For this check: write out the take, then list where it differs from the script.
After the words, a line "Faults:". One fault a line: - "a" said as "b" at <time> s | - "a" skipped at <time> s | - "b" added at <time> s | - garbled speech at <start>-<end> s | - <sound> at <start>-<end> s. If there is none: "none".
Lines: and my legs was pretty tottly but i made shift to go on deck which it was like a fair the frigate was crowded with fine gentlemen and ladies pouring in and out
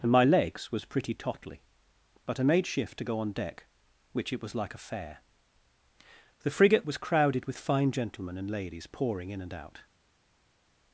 and my legs was pretty tottly but i made shift to go on deck which it was like a fair the frigate was crowded with fine gentlemen and ladies pouring in and out
Faults:
none